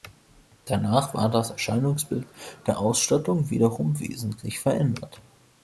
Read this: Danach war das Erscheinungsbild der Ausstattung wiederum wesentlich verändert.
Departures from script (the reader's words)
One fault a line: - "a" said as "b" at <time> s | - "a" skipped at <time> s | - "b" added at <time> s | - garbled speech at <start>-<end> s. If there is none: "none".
none